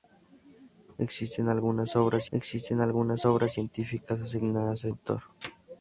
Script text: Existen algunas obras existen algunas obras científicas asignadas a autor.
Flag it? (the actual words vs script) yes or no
no